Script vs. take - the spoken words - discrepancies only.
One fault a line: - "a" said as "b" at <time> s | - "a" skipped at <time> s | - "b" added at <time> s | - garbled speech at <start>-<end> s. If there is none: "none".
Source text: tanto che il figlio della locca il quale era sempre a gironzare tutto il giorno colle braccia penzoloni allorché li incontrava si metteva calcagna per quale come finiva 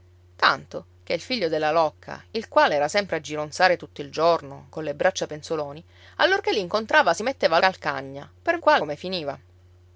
none